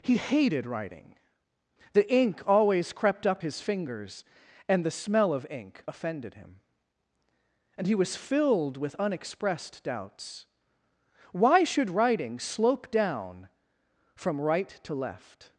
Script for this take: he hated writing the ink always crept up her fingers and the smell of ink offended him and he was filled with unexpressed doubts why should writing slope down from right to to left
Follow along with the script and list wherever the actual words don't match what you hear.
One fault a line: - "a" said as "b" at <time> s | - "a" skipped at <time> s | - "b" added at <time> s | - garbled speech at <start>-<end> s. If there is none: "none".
- "her" said as "his" at 3.4 s
- "to" skipped at 14.9 s